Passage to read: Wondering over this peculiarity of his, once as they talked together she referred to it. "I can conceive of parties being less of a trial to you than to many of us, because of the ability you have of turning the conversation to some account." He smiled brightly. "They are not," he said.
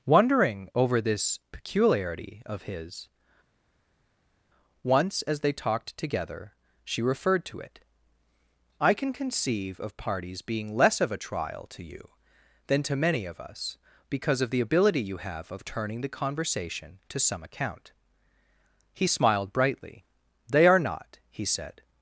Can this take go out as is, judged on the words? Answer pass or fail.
pass